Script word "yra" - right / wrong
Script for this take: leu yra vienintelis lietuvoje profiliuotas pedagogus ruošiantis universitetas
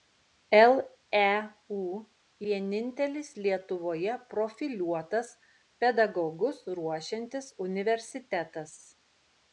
wrong